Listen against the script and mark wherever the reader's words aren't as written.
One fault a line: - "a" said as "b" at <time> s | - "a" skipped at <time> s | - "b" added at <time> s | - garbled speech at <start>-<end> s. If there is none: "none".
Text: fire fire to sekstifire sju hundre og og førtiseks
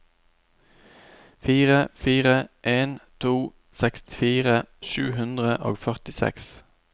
- "en" added at 2.6 s
- "og" skipped at 5.8 s